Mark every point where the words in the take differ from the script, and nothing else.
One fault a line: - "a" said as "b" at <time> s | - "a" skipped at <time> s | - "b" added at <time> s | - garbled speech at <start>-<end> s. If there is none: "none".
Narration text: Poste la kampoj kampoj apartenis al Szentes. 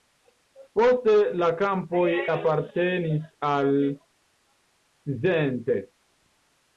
- "kampoj" skipped at 2.1 s